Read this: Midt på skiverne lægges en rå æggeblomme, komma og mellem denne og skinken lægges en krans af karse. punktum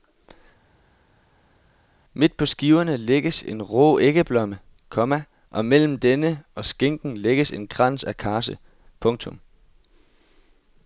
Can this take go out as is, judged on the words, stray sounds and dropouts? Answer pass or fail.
pass